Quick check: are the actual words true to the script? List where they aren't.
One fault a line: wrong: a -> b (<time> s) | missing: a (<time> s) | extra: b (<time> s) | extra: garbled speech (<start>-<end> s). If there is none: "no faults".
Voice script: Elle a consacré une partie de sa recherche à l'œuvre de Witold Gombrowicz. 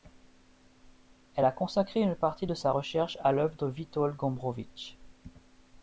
no faults